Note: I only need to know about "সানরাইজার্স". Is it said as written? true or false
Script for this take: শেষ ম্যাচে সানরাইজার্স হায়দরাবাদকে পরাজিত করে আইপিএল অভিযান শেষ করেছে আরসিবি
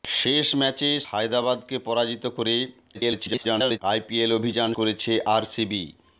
false